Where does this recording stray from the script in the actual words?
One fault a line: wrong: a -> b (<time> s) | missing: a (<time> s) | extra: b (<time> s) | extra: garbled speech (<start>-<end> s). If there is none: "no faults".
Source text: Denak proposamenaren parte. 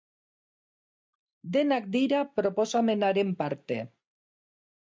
extra: dira (2.0 s)